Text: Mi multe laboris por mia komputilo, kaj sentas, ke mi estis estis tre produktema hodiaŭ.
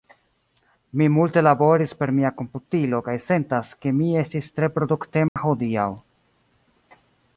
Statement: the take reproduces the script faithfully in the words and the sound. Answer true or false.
false